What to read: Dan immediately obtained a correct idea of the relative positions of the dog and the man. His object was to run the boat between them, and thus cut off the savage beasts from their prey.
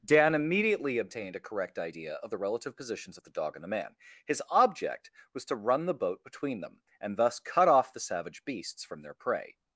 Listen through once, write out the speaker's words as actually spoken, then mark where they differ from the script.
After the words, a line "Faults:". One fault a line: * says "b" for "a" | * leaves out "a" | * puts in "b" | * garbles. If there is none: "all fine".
Dan immediately obtained a correct idea of the relative positions of the dog and the man. His object was to run the boat between them, and thus cut off the savage beasts from their prey.
Faults:
all fine